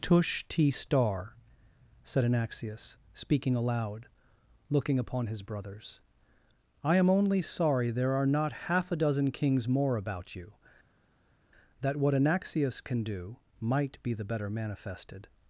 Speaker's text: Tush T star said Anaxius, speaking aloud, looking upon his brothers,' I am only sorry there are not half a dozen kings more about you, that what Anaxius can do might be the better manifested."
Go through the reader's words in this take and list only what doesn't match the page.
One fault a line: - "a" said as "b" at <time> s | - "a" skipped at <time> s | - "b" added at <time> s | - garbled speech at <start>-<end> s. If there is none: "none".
none